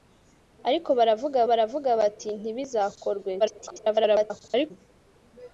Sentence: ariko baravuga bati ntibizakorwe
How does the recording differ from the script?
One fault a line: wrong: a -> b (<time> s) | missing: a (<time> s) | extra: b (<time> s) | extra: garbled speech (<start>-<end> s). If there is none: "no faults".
extra: baravuga (1.5 s)
extra: garbled speech (3.4-4.7 s)